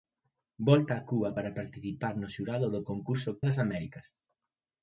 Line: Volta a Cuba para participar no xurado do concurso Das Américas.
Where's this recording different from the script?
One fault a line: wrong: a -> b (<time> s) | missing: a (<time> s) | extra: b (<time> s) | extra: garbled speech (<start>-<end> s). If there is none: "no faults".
no faults